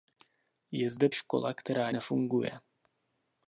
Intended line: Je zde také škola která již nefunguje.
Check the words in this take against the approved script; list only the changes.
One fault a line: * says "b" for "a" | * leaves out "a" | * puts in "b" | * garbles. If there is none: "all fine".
* leaves out "také"
* leaves out "již"